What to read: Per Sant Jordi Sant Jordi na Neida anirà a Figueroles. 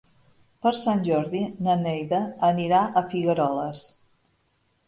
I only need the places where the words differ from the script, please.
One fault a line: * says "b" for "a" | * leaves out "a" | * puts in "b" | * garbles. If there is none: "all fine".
* leaves out "Sant Jordi"